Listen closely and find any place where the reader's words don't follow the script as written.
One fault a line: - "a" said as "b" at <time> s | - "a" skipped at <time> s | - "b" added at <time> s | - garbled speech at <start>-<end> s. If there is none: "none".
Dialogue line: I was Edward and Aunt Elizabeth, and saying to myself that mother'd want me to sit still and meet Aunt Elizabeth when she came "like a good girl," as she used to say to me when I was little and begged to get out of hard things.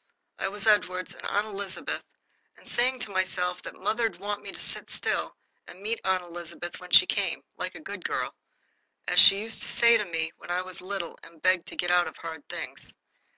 none